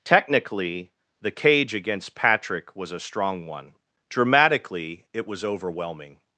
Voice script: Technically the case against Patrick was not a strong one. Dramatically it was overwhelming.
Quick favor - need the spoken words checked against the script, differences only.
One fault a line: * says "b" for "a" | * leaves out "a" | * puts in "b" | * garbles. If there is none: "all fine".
* says "cage" for "case"
* leaves out "not"